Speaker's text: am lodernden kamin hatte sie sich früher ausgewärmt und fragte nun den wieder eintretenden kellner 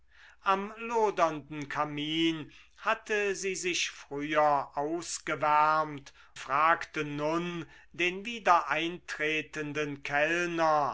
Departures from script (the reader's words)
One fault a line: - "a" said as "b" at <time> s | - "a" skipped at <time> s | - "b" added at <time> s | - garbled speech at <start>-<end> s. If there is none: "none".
- "und" skipped at 6.1 s